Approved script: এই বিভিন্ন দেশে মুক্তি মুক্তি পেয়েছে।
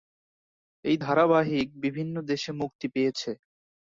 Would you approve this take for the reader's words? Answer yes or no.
no